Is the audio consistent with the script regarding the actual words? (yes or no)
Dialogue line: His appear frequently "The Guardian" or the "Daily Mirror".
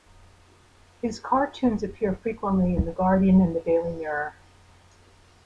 no